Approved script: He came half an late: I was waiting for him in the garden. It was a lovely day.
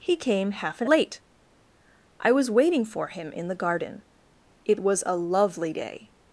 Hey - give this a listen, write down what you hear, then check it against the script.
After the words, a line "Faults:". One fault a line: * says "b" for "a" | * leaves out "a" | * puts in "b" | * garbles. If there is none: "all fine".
He came half an late: I was waiting for him in the garden. It was a lovely day.
Faults:
all fine